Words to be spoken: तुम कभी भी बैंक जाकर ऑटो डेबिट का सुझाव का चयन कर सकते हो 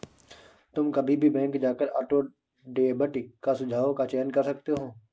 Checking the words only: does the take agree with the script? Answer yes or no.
yes